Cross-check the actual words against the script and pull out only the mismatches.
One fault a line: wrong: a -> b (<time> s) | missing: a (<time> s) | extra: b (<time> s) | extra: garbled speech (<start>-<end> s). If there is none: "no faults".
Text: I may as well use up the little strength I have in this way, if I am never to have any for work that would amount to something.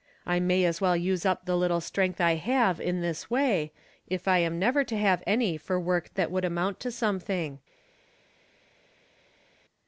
no faults